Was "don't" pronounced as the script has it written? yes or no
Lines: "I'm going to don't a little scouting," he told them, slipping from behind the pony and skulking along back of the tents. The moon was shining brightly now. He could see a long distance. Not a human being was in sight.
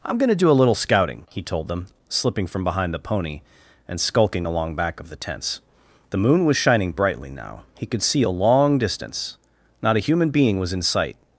no